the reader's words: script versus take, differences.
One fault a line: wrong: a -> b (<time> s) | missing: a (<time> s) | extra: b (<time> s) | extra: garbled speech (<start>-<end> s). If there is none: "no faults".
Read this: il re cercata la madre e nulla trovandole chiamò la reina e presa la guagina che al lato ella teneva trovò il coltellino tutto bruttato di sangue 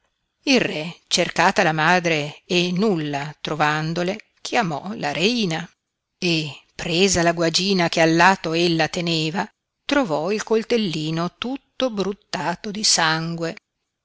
no faults